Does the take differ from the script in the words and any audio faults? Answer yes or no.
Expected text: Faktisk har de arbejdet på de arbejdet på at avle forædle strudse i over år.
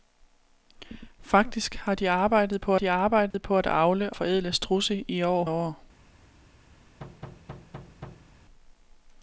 yes